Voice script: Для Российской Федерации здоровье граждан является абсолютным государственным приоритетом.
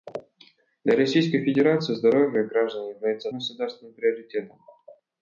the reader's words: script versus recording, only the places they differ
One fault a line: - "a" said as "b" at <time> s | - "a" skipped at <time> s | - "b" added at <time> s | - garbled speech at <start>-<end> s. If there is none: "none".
- "абсолютным" skipped at 3.3 s